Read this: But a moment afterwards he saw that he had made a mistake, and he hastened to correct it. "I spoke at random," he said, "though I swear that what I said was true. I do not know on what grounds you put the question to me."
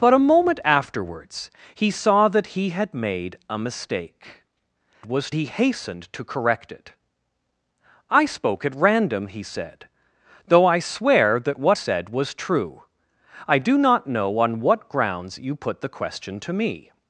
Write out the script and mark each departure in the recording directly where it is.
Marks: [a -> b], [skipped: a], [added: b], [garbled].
But a moment afterwards he saw that he had made a mistake, [and -> was] he hastened to correct it. "I spoke at random," he said, "though I swear that what [skipped: I] said was true. I do not know on what grounds you put the question to me."